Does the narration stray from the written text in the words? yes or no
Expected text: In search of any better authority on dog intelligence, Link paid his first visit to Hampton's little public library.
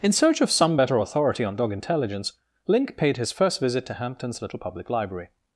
yes